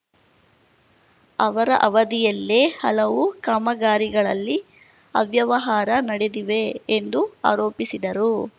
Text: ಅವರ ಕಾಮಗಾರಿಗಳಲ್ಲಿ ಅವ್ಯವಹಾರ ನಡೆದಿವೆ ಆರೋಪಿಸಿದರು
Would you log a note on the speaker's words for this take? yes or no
yes